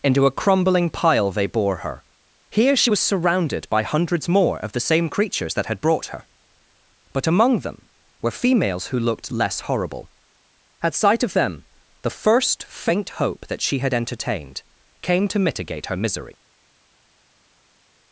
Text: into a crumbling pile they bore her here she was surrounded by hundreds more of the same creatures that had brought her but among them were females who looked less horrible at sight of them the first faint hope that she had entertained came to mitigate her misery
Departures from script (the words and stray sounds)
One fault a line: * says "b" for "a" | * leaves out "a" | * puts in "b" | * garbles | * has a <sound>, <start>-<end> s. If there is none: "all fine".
all fine